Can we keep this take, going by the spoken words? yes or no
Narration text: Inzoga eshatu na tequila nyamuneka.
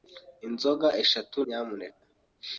no